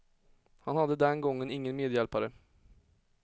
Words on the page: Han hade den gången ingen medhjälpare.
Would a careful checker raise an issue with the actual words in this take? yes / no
no